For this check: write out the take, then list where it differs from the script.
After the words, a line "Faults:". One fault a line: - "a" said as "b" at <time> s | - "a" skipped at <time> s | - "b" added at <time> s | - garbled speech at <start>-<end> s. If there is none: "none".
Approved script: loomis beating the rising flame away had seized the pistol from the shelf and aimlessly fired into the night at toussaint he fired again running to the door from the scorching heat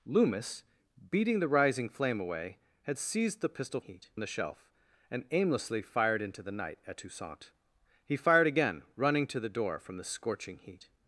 loomis beating the rising flame away had seized the pistol heat the shelf and aimlessly fired into the night at toussaint he fired again running to the door from the scorching heat
Faults:
- "from" said as "heat" at 3.8 s